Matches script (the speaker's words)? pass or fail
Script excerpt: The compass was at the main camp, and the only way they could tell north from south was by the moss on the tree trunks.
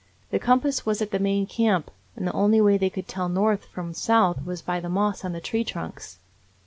pass